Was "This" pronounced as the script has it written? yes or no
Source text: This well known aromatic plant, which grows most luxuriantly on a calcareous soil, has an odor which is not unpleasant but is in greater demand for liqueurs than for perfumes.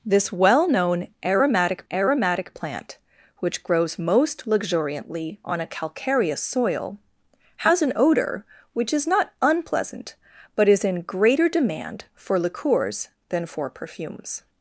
yes